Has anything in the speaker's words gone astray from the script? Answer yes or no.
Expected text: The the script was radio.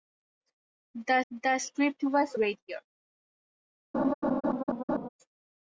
no